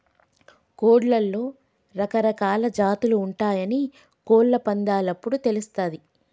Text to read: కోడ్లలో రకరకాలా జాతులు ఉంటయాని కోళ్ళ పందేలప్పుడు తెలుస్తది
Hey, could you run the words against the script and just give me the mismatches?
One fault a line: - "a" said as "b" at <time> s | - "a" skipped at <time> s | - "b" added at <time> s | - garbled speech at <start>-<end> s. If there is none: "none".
none